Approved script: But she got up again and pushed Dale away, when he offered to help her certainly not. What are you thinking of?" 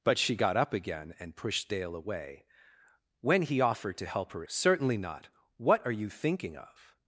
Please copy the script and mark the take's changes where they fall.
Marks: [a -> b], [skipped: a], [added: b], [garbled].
But she got up again and pushed Dale away, when he offered to help her certainly not. What are you thinking of?"